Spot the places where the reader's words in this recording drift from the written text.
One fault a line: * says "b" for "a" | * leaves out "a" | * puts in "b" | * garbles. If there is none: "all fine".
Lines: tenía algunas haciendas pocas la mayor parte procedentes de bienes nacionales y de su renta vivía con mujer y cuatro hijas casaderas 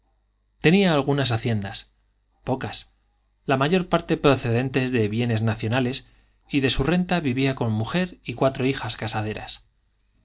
all fine